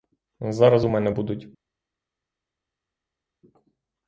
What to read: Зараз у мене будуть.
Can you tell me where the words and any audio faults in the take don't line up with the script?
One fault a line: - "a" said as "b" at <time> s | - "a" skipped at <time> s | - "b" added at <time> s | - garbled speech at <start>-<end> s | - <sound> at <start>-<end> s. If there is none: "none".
none